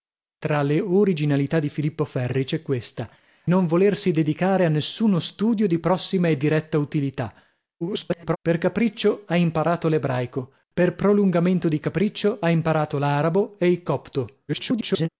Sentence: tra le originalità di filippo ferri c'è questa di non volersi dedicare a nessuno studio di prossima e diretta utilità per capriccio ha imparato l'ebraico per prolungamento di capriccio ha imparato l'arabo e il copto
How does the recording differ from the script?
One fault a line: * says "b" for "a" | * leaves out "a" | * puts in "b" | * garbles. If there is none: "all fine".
* leaves out "di"
* garbles
* garbles